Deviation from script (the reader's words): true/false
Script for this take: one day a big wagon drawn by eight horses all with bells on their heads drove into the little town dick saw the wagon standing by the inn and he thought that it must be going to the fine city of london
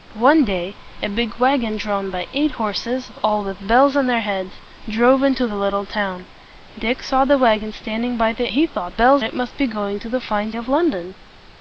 true